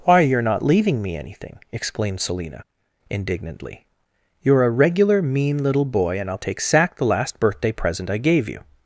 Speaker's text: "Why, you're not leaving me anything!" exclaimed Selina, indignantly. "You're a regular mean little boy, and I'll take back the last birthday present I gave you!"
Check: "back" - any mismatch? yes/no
yes